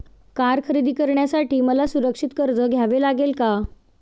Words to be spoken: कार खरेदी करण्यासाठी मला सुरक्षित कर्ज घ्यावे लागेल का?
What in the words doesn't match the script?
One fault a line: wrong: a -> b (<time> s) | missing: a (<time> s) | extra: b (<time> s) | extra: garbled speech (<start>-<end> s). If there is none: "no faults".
no faults